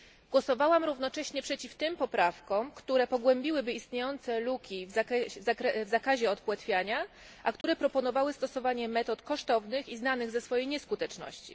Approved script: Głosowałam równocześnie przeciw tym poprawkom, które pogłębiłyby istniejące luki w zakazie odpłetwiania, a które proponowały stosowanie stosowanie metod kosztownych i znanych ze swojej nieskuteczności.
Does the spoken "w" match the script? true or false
true